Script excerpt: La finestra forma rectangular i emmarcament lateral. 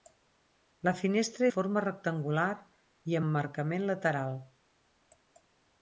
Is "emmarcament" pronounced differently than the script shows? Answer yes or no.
no